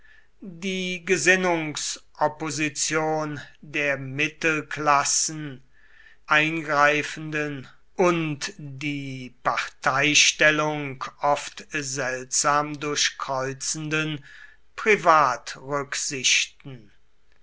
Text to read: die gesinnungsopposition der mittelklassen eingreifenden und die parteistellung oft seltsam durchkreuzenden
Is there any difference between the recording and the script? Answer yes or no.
no